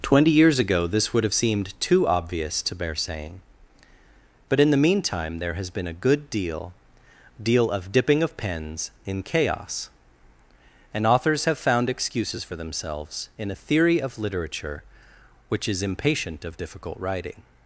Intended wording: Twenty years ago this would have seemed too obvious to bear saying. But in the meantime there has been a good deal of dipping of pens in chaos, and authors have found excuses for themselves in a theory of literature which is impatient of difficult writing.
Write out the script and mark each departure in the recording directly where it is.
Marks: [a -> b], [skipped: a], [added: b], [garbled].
Twenty years ago this would have seemed too obvious to bear saying. But in the meantime there has been a good deal [added: deal] of dipping of pens in chaos, and authors have found excuses for themselves in a theory of literature which is impatient of difficult writing.